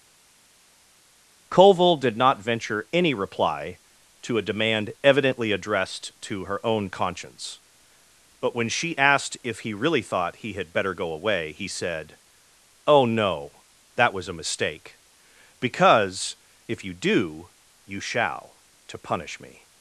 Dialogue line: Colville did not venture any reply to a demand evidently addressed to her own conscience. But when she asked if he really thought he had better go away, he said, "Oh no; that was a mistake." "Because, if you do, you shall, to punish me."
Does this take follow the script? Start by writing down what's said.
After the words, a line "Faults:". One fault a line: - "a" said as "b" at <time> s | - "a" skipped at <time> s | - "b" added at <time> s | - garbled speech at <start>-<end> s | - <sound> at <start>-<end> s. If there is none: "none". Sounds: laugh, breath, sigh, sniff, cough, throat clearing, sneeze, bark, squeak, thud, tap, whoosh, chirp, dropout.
Colville did not venture any reply to a demand evidently addressed to her own conscience. But when she asked if he really thought he had better go away, he said, "Oh no; that was a mistake." "Because, if you do, you shall, to punish me."
Faults:
none